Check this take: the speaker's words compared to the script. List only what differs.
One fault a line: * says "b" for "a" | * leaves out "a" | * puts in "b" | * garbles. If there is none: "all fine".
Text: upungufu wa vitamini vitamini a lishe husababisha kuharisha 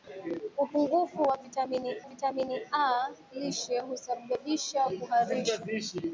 all fine